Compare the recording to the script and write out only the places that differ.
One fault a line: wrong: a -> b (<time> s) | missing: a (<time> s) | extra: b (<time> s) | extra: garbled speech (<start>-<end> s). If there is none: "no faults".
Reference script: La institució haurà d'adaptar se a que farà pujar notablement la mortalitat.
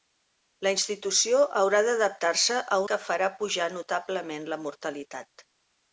no faults